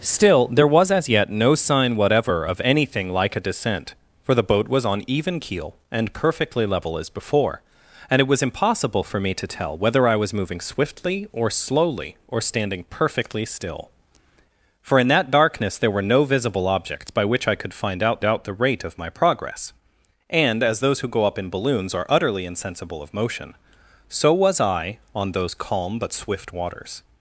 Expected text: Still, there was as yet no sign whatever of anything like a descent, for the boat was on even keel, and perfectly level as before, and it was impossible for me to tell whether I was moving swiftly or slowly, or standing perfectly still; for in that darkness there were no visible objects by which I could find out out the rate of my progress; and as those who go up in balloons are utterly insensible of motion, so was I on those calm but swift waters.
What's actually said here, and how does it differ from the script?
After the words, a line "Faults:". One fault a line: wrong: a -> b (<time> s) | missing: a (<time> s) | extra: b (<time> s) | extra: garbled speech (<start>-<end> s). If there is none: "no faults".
Still, there was as yet no sign whatever of anything like a descent, for the boat was on even keel, and perfectly level as before, and it was impossible for me to tell whether I was moving swiftly or slowly, or standing perfectly still; for in that darkness there were no visible objects by which I could find out out the rate of my progress; and as those who go up in balloons are utterly insensible of motion, so was I on those calm but swift waters.
Faults:
no faults